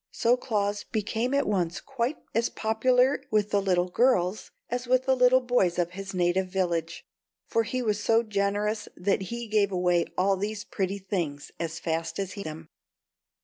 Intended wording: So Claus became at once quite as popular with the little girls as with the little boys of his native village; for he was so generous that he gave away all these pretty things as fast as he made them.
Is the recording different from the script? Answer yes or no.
yes